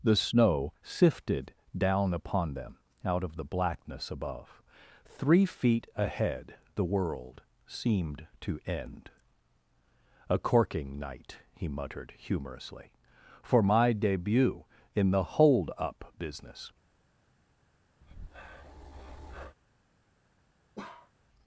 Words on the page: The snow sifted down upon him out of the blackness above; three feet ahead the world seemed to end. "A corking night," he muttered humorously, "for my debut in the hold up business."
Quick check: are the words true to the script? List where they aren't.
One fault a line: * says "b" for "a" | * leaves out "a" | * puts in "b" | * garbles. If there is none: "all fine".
* says "them" for "him"